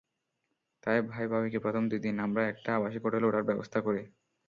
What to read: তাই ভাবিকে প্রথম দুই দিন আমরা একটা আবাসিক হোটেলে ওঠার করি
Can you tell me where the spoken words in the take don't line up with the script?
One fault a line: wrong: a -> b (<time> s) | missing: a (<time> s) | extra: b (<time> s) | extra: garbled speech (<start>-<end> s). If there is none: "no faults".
extra: ভাই (1.1 s)
extra: ব্যবস্থা (3.5 s)